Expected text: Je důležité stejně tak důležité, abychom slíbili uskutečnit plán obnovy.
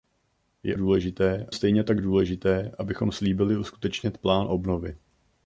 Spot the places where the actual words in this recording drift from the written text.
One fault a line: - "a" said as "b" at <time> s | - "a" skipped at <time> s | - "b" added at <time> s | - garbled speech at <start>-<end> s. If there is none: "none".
none